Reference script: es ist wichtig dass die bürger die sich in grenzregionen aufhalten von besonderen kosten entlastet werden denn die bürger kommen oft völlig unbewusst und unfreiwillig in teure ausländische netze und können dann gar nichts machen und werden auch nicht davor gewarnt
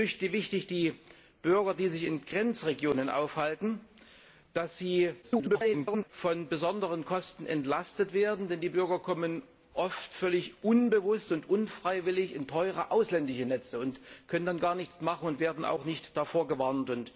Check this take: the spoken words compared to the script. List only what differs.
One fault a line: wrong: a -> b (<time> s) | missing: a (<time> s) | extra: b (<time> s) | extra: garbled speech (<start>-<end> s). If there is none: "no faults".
extra: garbled speech (5.2-6.1 s)